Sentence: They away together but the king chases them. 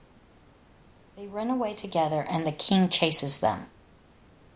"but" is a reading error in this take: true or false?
true